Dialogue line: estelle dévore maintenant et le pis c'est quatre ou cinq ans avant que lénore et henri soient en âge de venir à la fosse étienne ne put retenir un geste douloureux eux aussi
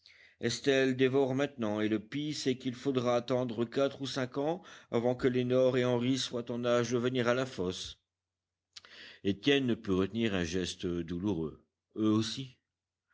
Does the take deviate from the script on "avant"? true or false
false